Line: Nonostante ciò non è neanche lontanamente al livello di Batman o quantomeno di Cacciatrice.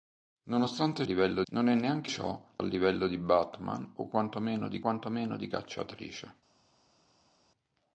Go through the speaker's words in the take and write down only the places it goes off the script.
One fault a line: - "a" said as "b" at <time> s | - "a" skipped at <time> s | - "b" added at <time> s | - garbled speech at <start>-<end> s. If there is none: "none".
- "ciò" said as "livello" at 1.0 s
- "lontanamente" said as "ciò" at 2.1 s
- "quantomeno di" added at 4.8 s